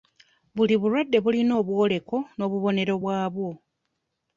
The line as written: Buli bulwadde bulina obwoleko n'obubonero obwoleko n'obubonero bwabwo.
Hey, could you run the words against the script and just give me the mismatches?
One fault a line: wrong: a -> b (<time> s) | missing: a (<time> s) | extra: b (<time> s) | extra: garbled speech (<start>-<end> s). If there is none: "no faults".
missing: obwoleko n'obubonero (2.9 s)